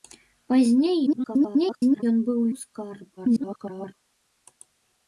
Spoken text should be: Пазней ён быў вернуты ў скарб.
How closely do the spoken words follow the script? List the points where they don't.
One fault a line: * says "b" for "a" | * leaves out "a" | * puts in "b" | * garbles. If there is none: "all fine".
* garbles
* leaves out "вернуты"
* garbles